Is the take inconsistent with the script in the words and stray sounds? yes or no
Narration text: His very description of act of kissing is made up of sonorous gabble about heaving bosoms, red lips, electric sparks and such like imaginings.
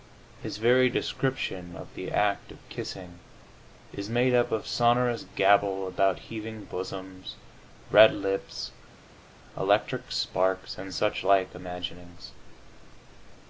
yes